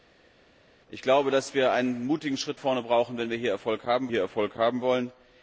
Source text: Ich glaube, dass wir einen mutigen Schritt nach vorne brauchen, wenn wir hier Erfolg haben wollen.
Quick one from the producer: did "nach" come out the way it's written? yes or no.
no